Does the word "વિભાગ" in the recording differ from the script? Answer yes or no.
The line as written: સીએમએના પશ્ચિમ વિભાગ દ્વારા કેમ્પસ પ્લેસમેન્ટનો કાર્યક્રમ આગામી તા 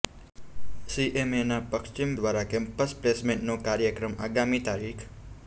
yes